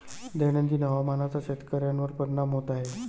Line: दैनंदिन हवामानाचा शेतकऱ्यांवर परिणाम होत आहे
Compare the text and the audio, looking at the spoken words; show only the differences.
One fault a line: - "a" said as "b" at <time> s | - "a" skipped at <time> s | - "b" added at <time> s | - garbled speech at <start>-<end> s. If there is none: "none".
none